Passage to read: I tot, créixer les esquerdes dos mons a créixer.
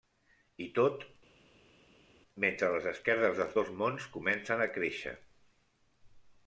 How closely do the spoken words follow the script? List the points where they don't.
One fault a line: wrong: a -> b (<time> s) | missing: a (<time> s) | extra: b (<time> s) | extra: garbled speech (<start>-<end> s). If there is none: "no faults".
wrong: créixer -> mentre (2.4 s)
extra: dels (3.4 s)
extra: comencen (4.2 s)